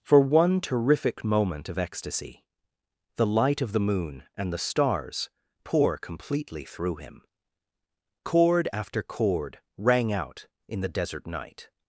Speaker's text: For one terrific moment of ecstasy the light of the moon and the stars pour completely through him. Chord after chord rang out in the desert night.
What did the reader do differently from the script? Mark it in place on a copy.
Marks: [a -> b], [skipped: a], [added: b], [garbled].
For one terrific moment of ecstasy the light of the moon and the stars pour completely through him. Chord after chord rang out in the desert night.